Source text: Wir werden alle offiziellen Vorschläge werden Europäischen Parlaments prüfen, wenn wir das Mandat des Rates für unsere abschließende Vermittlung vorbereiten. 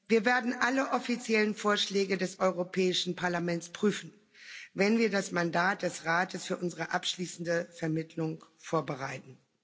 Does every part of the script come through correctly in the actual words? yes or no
no